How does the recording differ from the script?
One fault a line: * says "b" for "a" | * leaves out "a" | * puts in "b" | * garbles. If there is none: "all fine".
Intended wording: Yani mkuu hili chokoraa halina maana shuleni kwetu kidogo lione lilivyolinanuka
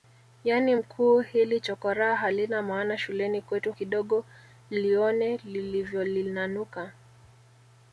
all fine